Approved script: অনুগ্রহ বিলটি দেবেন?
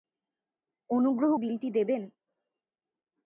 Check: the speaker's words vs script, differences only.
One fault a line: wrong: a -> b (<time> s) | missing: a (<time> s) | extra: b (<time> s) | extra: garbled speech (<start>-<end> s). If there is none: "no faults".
no faults